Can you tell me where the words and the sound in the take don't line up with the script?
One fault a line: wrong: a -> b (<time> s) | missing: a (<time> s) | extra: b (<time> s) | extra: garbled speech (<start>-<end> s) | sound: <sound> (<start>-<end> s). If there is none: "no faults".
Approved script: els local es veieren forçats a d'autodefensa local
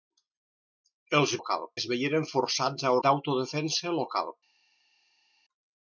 no faults